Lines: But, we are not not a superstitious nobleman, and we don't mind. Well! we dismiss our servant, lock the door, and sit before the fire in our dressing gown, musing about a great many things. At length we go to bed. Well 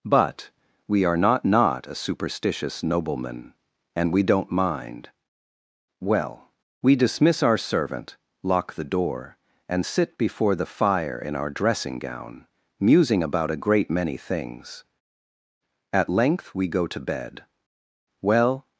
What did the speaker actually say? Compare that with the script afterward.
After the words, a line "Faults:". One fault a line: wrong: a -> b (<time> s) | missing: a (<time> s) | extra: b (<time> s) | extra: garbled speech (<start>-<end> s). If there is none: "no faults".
But, we are not not a superstitious nobleman, and we don't mind. Well! we dismiss our servant, lock the door, and sit before the fire in our dressing gown, musing about a great many things. At length we go to bed. Well
Faults:
no faults